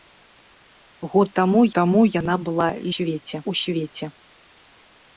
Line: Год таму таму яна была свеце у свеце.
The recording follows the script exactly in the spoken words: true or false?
true